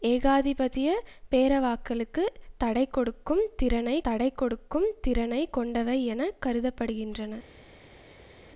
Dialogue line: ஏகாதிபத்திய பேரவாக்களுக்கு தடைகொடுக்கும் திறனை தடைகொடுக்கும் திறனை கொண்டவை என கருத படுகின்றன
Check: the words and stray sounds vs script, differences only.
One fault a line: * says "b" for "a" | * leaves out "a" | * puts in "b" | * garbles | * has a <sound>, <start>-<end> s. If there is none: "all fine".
all fine